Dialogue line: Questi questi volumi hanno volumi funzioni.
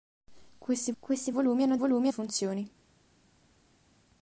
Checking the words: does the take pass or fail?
pass